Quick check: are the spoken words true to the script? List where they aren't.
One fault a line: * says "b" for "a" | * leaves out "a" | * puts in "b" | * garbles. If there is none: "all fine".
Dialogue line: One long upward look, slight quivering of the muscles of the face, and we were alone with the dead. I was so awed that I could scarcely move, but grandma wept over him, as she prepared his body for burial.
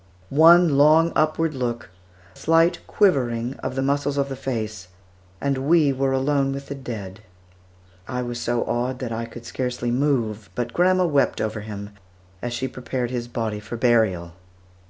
all fine